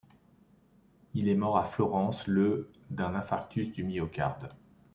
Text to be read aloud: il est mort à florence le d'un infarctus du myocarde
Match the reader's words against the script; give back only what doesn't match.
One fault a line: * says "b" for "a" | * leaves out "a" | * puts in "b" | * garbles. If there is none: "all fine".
all fine